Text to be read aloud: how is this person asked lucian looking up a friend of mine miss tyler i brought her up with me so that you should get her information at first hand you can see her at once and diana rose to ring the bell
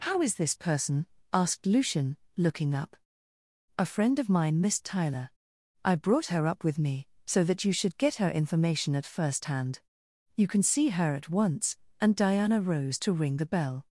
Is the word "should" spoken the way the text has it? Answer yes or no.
yes